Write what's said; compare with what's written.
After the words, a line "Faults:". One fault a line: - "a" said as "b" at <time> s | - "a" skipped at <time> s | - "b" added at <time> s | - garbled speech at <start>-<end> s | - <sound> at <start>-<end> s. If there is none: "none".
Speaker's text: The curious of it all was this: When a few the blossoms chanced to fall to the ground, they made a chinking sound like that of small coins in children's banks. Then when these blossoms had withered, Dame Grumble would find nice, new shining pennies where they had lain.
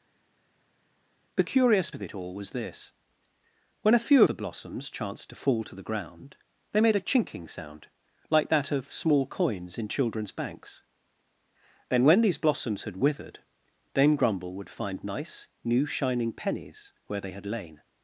The curious of it all was this: When a few the blossoms chanced to fall to the ground, they made a chinking sound like that of small coins in children's banks. Then when these blossoms had withered, Dame Grumble would find nice, new shining pennies where they had lain.
Faults:
none